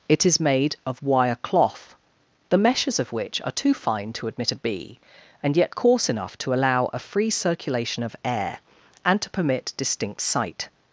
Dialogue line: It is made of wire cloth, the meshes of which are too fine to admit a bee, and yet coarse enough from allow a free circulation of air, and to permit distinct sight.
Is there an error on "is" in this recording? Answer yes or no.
no